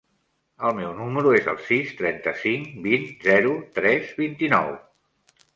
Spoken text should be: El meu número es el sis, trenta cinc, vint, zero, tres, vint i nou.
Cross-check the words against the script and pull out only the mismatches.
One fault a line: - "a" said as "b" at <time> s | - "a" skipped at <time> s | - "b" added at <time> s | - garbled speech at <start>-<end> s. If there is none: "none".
none